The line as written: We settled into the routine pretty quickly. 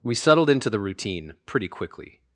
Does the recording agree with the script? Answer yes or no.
yes